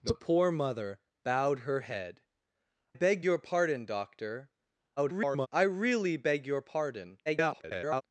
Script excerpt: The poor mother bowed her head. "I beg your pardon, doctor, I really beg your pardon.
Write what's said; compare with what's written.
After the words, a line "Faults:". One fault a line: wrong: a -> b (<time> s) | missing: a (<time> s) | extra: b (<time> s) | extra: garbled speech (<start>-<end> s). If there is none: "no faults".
The poor mother bowed her head. "beg your pardon, doctor, [garbled] I really beg your pardon. [garbled]
Faults:
missing: I (2.2 s)
extra: garbled speech (5.0-5.5 s)
extra: garbled speech (7.3-8.0 s)